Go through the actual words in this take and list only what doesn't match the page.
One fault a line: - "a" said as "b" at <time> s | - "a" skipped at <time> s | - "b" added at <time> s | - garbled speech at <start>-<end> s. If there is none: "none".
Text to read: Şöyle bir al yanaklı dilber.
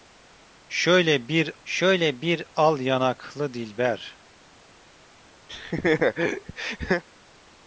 - "şöyle bir" added at 1.6 s